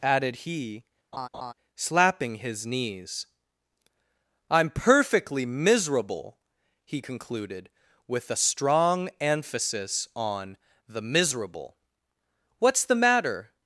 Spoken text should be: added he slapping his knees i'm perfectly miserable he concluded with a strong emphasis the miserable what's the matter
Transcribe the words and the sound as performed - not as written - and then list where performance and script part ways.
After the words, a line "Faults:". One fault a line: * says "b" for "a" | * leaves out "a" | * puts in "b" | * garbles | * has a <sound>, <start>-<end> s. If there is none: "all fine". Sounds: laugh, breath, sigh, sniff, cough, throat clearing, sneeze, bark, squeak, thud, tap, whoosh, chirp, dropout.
added he slapping his knees i'm perfectly miserable he concluded with a strong emphasis on the miserable what's the matter
Faults:
* has a laugh, 1.1-1.5 s
* puts in "on"